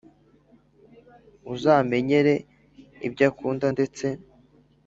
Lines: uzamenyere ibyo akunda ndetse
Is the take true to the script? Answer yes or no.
yes